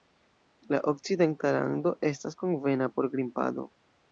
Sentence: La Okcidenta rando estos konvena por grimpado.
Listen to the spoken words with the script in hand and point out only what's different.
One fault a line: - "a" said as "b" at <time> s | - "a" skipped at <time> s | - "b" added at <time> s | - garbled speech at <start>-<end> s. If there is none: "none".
- "estos" said as "estas" at 2.1 s